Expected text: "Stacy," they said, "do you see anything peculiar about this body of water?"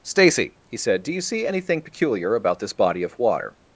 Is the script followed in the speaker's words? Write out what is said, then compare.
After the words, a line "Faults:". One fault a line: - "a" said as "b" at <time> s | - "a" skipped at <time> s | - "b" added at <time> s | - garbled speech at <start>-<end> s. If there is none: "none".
"Stacy," he said, "do you see anything peculiar about this body of water?"
Faults:
- "they" said as "he" at 0.7 s